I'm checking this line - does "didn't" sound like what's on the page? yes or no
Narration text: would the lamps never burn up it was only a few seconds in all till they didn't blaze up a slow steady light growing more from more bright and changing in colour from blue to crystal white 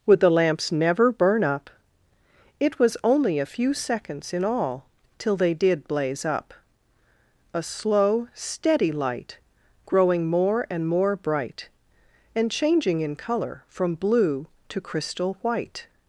no